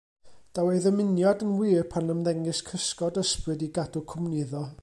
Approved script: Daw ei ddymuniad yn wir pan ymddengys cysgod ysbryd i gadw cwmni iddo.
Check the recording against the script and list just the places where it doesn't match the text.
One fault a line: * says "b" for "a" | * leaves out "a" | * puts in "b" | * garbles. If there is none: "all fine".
all fine